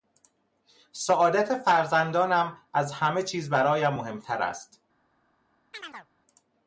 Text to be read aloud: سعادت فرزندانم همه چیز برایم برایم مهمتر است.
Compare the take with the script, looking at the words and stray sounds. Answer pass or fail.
fail